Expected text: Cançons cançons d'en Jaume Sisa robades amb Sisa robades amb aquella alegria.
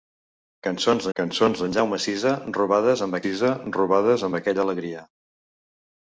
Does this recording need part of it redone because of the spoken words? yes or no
no